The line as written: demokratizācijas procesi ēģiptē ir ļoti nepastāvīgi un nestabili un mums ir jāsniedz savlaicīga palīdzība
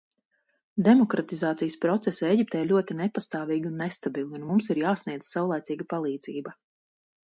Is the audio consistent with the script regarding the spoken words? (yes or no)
yes